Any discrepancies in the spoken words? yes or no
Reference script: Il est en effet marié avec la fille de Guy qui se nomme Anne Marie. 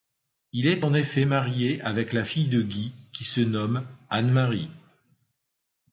no